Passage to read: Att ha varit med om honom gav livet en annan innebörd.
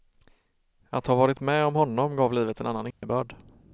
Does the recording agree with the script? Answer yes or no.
yes